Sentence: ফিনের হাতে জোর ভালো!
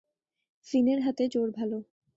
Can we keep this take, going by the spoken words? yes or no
yes